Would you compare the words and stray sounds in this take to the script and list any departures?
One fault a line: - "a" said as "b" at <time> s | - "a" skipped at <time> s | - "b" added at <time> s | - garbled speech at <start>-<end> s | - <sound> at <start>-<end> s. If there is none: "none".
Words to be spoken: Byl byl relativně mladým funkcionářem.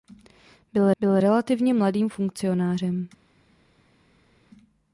none